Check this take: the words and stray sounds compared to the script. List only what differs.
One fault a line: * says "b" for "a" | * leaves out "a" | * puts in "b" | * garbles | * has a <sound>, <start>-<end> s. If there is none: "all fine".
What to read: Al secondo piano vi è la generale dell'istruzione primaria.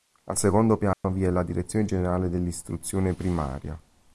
* has a dropout, 0.9-1.0 s
* puts in "direzione"